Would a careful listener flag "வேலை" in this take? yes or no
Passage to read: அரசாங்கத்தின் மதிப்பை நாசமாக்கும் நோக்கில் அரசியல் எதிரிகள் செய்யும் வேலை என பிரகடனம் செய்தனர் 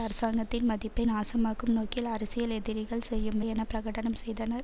yes